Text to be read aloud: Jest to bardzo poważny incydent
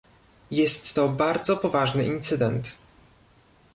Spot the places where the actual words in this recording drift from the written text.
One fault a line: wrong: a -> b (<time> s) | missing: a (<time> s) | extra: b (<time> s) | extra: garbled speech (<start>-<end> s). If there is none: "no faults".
no faults